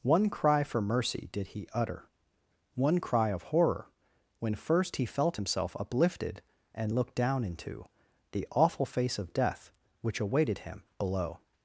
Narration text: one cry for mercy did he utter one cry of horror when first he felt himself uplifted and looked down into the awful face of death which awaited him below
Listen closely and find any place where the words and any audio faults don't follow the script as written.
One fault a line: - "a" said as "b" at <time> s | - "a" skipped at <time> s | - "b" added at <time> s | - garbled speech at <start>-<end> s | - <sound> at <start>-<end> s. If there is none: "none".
none